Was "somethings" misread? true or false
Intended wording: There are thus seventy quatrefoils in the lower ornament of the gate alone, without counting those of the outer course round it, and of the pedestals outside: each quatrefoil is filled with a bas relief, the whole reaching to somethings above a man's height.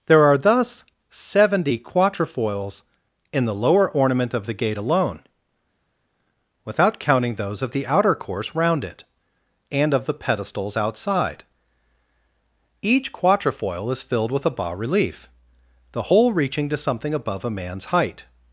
true